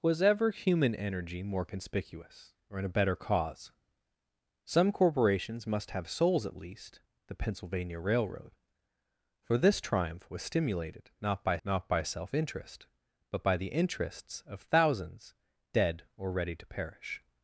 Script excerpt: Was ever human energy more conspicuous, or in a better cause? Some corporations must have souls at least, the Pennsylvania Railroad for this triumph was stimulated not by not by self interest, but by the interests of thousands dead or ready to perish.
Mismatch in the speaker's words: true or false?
false